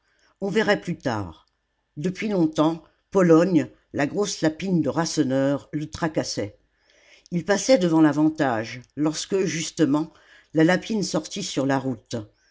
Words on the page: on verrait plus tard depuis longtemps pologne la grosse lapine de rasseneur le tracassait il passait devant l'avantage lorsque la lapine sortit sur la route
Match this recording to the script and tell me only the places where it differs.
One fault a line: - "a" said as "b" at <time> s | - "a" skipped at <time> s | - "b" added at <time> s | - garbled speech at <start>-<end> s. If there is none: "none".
- "justement" added at 9.4 s